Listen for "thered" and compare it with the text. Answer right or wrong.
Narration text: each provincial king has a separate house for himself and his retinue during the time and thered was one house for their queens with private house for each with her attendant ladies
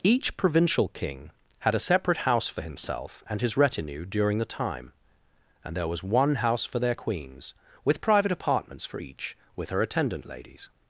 wrong